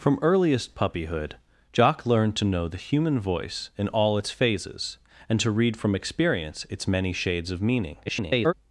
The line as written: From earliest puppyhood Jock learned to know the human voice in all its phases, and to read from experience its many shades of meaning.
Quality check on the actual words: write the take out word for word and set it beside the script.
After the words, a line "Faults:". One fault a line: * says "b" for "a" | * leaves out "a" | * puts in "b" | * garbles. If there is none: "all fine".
From earliest puppyhood Jock learned to know the human voice in all its phases, and to read from experience its many shades of meaning. [garbled]
Faults:
* garbles